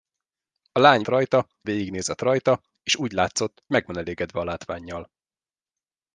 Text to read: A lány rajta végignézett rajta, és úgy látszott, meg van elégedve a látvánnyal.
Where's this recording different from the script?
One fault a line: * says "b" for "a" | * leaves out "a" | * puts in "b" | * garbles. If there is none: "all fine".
all fine